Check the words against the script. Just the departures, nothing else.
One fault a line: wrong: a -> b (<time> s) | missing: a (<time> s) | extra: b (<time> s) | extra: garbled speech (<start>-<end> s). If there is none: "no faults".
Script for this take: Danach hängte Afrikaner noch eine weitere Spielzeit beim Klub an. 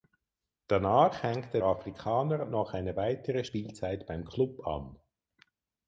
no faults